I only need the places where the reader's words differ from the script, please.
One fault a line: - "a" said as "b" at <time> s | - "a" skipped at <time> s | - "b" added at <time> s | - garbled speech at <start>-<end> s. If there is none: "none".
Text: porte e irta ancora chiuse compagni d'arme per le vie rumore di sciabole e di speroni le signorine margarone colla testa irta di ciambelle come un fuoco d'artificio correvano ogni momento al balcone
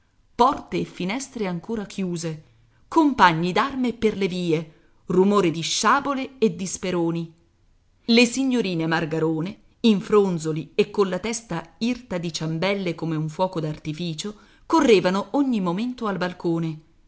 - "irta" said as "finestre" at 0.8 s
- "in fronzoli e" added at 9.8 s